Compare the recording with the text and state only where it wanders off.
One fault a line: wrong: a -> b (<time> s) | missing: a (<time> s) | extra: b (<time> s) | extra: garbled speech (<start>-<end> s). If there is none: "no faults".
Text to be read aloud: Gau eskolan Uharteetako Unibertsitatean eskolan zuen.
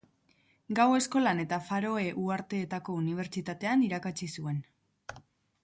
extra: eta Faroe (1.4 s)
wrong: eskolan -> irakatsi (3.9 s)